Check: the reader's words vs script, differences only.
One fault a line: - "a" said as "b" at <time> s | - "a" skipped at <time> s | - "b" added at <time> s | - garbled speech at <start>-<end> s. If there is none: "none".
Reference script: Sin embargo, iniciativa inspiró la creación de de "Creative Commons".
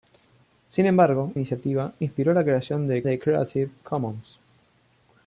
none